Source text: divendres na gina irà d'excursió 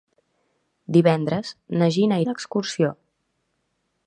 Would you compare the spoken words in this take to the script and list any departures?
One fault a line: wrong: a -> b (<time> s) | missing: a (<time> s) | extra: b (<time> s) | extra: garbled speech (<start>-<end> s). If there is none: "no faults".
missing: irà (2.2 s)